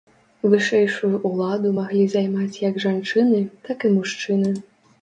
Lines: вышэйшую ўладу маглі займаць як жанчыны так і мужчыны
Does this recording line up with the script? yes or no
yes